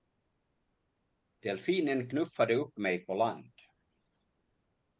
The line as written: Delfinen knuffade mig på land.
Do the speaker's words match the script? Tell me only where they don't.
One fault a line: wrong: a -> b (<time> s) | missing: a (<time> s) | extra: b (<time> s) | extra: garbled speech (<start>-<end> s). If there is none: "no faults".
extra: upp (2.6 s)